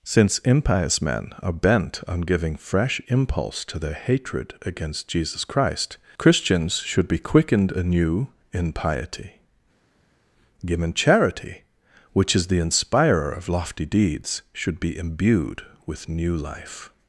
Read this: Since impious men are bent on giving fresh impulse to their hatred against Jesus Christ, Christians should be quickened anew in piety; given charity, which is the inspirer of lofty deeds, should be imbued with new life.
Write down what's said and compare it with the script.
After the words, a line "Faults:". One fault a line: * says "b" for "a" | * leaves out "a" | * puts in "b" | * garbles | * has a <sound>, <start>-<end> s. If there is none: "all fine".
Since impious men are bent on giving fresh impulse to their hatred against Jesus Christ, Christians should be quickened anew in piety; given charity, which is the inspirer of lofty deeds, should be imbued with new life.
Faults:
all fine